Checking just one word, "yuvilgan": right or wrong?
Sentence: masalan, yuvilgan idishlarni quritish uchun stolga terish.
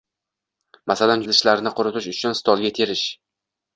wrong